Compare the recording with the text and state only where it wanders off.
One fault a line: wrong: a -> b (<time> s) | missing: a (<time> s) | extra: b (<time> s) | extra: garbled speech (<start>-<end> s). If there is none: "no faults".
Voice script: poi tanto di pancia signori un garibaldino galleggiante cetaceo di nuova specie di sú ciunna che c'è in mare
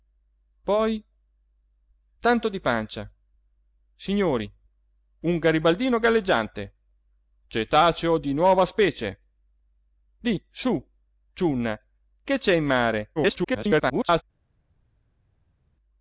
extra: garbled speech (13.2-14.2 s)